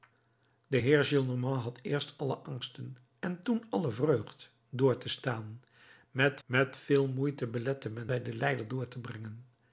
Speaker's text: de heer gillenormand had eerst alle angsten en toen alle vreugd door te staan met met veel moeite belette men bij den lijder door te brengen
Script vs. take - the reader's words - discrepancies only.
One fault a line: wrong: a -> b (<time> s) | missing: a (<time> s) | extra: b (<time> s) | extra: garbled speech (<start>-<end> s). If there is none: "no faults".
no faults